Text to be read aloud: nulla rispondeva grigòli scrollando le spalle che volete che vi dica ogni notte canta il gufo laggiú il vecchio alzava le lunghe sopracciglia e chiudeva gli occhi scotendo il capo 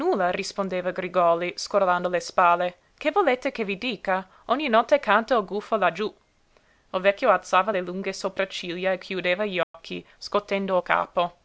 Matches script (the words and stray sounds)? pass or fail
fail